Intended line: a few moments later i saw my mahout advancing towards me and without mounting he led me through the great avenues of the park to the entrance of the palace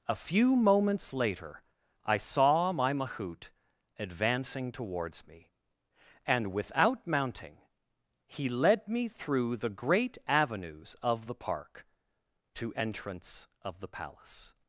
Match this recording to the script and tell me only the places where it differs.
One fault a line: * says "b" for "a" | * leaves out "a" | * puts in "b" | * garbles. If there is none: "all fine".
* leaves out "the"